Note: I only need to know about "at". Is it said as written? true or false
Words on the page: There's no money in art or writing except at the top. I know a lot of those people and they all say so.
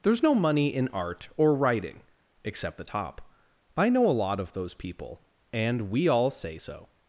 false